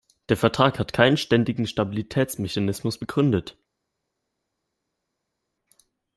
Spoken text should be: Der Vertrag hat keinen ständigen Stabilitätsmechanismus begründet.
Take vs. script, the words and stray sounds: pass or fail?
pass